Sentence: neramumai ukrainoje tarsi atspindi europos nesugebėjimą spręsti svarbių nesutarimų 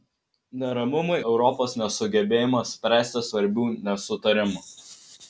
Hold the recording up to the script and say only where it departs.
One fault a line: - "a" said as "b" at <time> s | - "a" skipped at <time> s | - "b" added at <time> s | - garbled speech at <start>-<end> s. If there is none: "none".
- "ukrainoje tarsi atspindi" skipped at 1.2 s